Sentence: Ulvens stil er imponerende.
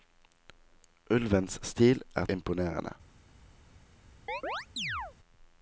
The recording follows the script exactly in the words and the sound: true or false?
false